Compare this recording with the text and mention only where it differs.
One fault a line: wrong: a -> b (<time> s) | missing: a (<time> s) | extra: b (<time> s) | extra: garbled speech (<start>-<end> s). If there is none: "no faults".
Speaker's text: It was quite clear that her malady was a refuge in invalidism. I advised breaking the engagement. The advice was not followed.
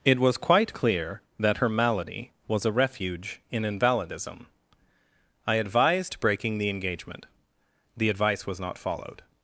no faults